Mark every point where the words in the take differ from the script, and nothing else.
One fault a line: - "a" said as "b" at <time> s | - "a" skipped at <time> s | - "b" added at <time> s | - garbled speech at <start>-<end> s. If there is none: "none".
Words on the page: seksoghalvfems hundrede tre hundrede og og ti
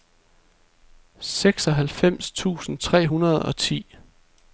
- "hundrede" said as "tusind" at 2.3 s
- "og" skipped at 3.6 s